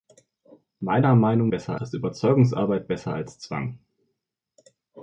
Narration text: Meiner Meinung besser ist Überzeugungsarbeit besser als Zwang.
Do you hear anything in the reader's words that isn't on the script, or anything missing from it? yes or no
no